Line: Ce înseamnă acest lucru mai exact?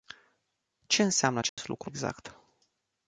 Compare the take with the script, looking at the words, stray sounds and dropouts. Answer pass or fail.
fail